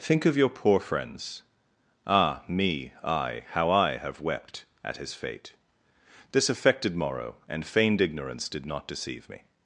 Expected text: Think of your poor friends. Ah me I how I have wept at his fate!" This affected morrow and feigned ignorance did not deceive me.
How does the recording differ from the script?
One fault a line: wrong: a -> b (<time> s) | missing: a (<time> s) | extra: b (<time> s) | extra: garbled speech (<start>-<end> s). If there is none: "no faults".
no faults